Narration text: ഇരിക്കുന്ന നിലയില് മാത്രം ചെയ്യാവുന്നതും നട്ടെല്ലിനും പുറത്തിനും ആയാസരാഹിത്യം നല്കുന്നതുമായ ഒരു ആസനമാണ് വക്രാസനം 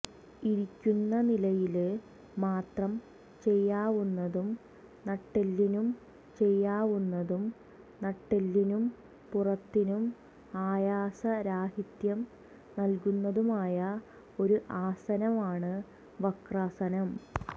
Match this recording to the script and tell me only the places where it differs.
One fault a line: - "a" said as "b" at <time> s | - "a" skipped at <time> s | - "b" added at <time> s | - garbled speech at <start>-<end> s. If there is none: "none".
- "ചെയ്യാവുന്നതും നട്ടെല്ലിനും" added at 6.4 s